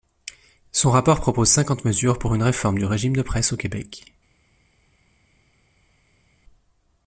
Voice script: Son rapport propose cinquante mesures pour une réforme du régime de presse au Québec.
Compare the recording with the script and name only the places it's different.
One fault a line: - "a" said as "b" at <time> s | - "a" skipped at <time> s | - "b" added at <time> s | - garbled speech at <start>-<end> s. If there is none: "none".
none